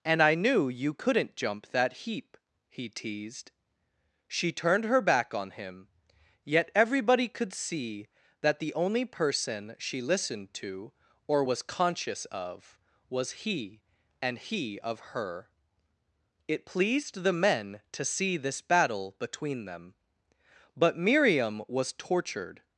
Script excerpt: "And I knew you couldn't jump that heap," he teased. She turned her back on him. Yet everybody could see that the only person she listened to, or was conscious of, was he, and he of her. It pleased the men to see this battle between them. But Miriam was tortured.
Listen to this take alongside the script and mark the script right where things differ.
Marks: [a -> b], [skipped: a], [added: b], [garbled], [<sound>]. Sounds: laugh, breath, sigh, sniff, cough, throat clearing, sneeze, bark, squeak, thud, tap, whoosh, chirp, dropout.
"And I knew you couldn't jump that heap," he teased. She turned her back on him. Yet everybody could see that the only person she listened to, or was conscious of, was he, and he of her. It pleased the men to see this battle between them. But Miriam was tortured.